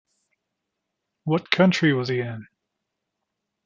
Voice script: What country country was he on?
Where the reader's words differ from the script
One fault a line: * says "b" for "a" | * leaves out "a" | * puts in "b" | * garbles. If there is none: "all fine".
* leaves out "country"
* says "in" for "on"